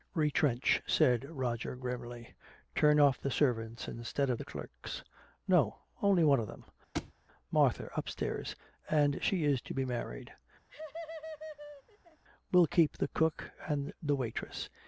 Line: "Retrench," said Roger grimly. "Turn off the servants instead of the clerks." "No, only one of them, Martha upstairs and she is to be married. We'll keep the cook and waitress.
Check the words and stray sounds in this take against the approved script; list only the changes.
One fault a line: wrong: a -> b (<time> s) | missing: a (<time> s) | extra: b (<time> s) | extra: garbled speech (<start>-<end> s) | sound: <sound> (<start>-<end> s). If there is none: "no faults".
sound: thud (6.9-7.1 s)
sound: laugh (10.7-12.2 s)
extra: the (14.0 s)